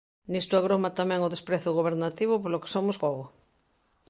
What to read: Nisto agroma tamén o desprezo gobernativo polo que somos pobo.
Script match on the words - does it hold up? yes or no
yes